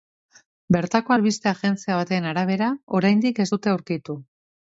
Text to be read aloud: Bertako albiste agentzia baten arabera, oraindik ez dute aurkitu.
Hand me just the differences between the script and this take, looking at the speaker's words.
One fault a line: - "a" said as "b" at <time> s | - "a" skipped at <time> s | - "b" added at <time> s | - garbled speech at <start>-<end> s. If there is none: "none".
none